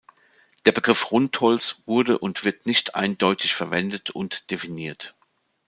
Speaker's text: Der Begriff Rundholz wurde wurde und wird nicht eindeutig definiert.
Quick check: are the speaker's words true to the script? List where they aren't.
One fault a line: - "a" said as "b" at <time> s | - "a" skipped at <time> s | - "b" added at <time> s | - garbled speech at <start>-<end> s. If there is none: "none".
- "wurde" skipped at 2.2 s
- "verwendet und" added at 3.5 s